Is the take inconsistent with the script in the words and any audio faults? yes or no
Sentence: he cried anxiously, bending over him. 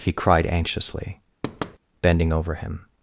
yes